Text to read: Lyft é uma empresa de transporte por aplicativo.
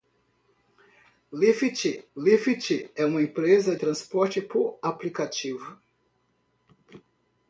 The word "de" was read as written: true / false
false